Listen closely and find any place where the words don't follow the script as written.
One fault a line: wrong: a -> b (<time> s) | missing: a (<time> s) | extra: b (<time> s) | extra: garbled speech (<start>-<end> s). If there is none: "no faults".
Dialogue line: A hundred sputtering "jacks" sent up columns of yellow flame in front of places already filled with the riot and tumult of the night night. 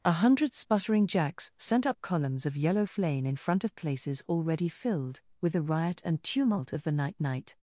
no faults